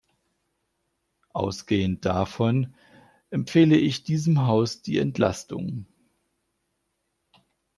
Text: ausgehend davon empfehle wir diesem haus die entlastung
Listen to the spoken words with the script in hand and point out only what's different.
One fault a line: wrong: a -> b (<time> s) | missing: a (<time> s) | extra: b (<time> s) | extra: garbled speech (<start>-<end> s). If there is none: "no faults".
wrong: wir -> ich (3.8 s)